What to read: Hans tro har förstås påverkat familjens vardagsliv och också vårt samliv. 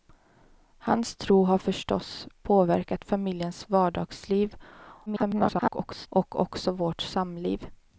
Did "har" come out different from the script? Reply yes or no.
no